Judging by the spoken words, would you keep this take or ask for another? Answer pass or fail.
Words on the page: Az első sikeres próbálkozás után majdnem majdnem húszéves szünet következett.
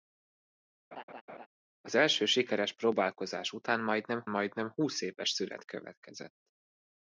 pass